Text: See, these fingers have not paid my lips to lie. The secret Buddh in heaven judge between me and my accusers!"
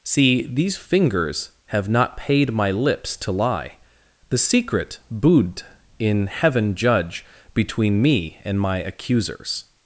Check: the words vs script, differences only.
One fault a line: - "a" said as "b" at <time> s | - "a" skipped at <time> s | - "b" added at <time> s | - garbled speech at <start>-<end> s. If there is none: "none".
none